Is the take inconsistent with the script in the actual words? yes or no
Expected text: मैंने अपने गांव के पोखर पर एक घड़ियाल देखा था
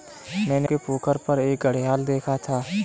yes